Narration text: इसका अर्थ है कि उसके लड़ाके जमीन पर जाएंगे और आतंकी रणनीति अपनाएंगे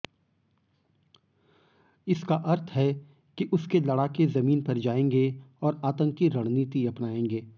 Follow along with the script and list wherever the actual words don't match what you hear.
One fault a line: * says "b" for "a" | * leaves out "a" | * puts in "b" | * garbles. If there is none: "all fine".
all fine